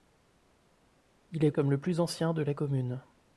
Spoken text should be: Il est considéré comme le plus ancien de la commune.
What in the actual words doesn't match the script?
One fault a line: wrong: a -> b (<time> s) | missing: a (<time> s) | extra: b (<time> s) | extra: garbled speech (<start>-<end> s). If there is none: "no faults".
missing: considéré (1.5 s)